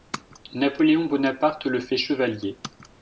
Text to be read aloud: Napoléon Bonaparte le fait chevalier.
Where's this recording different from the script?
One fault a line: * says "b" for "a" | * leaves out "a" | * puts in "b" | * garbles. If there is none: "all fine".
all fine